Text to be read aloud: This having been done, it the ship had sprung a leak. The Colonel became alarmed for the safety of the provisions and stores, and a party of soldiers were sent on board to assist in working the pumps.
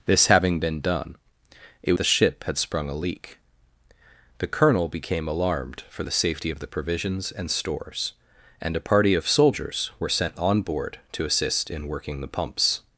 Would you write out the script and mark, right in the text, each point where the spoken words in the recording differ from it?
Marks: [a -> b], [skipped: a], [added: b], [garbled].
This having been done, it the ship had sprung a leak. The Colonel became alarmed for the safety of the provisions and stores, and a party of soldiers were sent on board to assist in working the pumps.